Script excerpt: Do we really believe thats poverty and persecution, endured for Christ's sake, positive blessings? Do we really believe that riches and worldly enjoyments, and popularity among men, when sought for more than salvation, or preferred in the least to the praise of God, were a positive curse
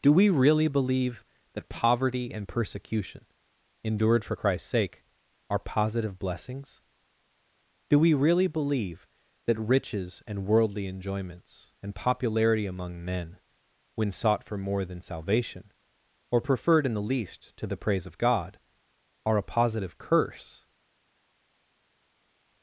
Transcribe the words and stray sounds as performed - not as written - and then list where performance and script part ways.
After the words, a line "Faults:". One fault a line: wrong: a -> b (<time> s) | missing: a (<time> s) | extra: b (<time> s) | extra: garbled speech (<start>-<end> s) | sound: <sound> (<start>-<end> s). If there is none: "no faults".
Do we really believe that poverty and persecution, endured for Christ's sake, are positive blessings? Do we really believe that riches and worldly enjoyments, and popularity among men, when sought for more than salvation, or preferred in the least to the praise of God, are a positive curse
Faults:
wrong: thats -> that (1.5 s)
extra: are (5.5 s)
wrong: were -> are (19.2 s)